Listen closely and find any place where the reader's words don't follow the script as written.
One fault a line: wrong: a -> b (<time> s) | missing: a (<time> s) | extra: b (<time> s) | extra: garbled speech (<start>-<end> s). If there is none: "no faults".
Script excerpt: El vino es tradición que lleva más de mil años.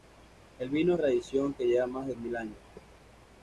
no faults